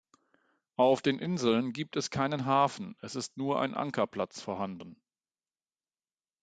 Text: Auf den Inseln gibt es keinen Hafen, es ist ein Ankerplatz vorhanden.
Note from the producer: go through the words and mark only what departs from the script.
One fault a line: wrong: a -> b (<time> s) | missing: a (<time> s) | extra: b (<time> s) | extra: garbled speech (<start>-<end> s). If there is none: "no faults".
extra: nur (3.4 s)